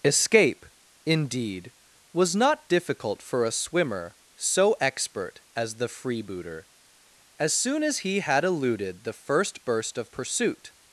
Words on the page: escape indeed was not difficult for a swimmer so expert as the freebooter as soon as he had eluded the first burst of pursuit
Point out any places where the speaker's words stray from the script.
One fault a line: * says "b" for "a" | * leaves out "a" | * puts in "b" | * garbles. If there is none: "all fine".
all fine